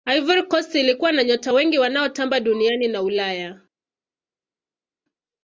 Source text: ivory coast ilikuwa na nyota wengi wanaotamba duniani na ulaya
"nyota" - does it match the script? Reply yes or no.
yes